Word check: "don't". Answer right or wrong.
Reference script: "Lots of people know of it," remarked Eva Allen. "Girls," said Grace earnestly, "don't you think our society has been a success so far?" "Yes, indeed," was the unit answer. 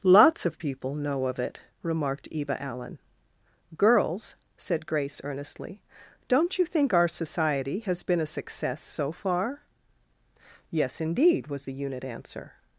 right